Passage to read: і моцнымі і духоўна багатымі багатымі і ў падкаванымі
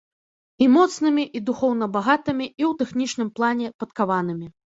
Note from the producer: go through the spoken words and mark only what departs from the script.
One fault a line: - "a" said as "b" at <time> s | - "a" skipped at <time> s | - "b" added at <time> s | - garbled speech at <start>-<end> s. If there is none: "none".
- "багатымі" skipped at 2.5 s
- "тэхнічным плане" added at 2.8 s